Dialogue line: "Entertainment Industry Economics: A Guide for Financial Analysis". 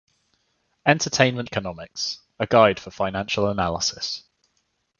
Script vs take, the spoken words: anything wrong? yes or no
yes